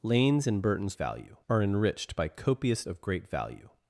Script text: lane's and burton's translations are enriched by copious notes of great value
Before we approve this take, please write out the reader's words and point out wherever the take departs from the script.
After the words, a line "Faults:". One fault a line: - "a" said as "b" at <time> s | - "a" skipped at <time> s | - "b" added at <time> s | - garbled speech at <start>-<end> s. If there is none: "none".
lane's and burton's value are enriched by copious of great value
Faults:
- "translations" said as "value" at 0.9 s
- "notes" skipped at 2.9 s